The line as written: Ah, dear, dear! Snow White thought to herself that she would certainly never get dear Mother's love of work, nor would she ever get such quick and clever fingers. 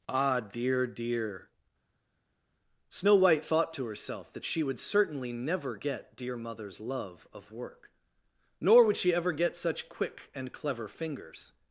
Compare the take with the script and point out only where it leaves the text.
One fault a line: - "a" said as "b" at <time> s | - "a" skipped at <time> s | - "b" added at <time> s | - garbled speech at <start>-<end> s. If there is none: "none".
none